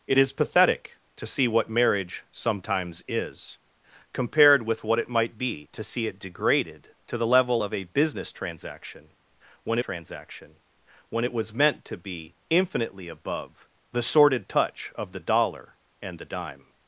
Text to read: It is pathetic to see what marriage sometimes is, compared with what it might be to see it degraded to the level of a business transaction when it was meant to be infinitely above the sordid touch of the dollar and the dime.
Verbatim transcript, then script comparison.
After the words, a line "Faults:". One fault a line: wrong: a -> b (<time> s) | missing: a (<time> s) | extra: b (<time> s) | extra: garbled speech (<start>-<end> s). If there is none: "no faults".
It is pathetic to see what marriage sometimes is, compared with what it might be to see it degraded to the level of a business transaction when transaction when it was meant to be infinitely above the sordid touch of the dollar and the dime.
Faults:
extra: transaction when (9.8 s)